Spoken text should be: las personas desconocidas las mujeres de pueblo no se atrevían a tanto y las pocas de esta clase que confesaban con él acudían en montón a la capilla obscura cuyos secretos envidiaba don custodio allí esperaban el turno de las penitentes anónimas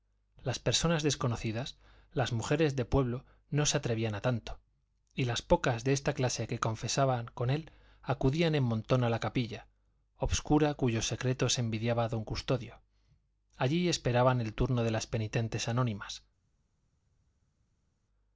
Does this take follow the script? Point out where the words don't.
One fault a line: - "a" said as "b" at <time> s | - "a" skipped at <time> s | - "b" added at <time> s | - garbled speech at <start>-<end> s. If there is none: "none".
none